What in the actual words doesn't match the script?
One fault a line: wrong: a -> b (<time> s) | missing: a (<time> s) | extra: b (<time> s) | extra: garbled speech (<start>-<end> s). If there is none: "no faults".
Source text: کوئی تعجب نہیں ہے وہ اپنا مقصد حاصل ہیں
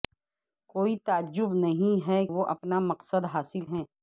no faults